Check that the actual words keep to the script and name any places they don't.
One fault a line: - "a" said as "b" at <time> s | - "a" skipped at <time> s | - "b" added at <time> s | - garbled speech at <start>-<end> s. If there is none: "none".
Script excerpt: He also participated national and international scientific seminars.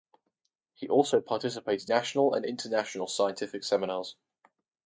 none